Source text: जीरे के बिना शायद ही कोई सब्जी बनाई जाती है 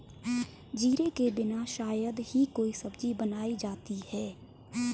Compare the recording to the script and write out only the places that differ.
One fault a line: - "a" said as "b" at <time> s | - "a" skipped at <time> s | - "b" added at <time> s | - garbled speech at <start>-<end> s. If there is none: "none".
none